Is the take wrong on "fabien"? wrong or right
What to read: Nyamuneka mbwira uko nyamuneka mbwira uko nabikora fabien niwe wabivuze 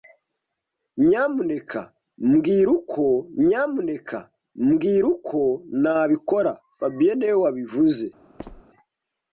right